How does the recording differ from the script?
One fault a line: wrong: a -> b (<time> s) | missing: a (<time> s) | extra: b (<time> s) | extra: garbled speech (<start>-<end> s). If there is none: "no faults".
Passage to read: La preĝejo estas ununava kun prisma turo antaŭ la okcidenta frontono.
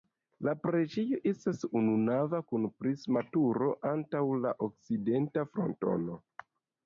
no faults